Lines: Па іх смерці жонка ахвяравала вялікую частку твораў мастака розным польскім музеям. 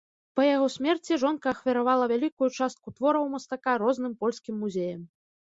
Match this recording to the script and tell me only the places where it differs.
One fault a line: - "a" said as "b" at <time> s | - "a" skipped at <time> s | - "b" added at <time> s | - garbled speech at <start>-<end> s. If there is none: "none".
- "іх" said as "яго" at 0.5 s